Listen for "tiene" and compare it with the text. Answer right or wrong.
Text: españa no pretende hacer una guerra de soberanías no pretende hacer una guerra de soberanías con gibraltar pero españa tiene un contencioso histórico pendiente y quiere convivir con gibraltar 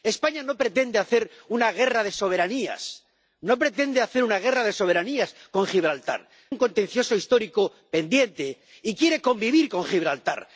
wrong